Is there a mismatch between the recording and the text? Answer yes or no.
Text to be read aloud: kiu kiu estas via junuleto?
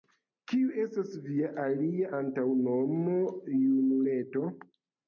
yes